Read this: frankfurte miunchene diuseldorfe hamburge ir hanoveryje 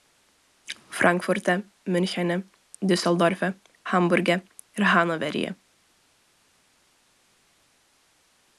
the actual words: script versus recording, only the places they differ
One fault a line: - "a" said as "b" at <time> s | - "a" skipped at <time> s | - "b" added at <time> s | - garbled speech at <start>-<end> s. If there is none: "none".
none